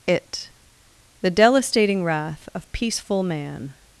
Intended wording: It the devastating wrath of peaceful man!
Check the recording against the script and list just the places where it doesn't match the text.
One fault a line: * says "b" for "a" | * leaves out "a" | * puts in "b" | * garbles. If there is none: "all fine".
all fine